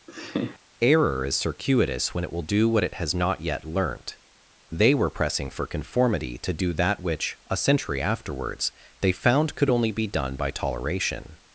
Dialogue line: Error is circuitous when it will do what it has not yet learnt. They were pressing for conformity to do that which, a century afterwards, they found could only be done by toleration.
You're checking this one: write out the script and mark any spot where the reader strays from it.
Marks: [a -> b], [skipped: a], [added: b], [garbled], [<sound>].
[laugh] Error is circuitous when it will do what it has not yet learnt. They were pressing for conformity to do that which, a century afterwards, they found could only be done by toleration.